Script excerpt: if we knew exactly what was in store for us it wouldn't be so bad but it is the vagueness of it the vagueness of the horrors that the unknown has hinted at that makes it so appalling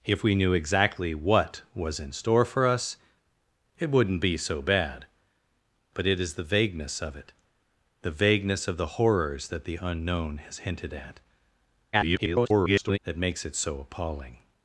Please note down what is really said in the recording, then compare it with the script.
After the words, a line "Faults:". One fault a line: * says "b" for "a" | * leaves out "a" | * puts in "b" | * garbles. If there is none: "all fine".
if we knew exactly what was in store for us it wouldn't be so bad but it is the vagueness of it the vagueness of the horrors that the unknown has hinted at [garbled] that makes it so appalling
Faults:
* garbles